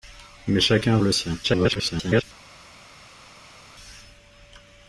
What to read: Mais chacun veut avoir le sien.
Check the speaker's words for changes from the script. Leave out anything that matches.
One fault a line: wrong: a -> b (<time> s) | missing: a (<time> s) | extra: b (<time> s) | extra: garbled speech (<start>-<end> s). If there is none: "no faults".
missing: veut avoir (1.0 s)
extra: garbled speech (1.4-2.2 s)